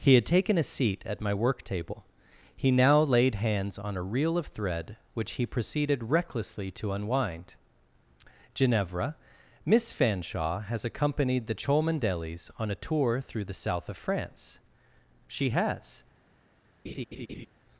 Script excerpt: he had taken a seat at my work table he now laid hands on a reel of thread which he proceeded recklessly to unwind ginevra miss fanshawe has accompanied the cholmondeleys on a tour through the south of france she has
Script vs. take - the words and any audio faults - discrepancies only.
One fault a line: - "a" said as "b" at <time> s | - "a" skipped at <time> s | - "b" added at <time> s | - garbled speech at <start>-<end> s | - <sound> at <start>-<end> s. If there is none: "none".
- laugh at 16.8-17.5 s